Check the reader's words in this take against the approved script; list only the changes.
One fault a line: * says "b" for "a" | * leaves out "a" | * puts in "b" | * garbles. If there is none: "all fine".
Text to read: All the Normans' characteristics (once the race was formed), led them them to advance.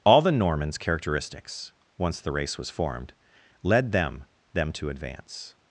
all fine